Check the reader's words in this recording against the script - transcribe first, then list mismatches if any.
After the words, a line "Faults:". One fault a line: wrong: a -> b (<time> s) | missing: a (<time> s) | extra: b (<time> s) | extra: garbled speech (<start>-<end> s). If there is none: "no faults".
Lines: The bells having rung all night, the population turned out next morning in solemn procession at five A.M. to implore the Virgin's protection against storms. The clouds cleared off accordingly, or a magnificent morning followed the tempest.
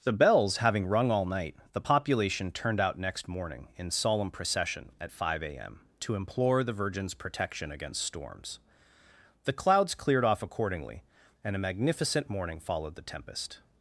The bells having rung all night, the population turned out next morning in solemn procession at five A.M. to implore the Virgin's protection against storms. The clouds cleared off accordingly, and a magnificent morning followed the tempest.
Faults:
wrong: or -> and (11.4 s)